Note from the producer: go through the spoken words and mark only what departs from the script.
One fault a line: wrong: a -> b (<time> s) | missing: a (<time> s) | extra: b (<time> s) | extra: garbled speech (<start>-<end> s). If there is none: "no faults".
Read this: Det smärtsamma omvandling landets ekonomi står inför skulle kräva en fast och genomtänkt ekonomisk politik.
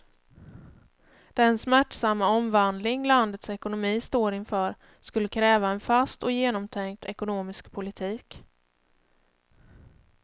wrong: Det -> Den (1.3 s)